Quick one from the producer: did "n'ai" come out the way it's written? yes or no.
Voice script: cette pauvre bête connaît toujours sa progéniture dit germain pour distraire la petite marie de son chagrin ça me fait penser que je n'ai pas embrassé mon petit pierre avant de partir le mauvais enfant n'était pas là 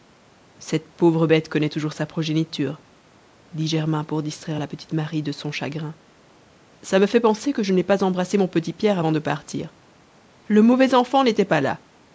yes